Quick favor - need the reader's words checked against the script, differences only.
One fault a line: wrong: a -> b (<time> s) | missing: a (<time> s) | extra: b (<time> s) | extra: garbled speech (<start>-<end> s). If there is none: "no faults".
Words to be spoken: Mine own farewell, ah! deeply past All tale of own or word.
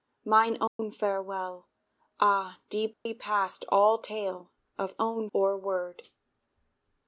no faults